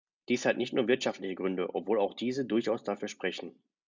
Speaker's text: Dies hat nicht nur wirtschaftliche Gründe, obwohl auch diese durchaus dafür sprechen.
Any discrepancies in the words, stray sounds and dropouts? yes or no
no